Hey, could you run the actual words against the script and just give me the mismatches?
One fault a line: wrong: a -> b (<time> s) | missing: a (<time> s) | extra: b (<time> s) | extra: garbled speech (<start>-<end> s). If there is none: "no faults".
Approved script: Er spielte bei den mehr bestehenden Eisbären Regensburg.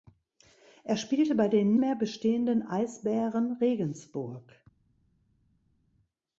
no faults